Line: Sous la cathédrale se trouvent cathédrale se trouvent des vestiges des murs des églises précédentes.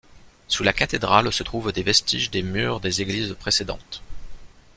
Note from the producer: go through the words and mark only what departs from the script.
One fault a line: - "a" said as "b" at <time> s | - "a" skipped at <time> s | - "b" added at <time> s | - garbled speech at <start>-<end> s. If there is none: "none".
- "cathédrale se trouvent" skipped at 1.7 s